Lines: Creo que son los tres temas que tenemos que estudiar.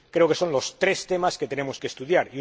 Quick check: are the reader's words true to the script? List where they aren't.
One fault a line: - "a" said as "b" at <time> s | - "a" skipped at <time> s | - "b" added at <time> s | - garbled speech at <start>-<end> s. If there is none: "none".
none